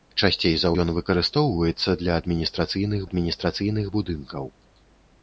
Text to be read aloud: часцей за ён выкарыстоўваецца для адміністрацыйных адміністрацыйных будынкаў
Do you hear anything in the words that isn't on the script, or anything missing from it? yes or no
no